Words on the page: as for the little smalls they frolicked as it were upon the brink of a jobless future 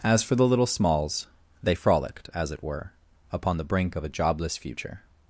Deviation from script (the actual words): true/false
false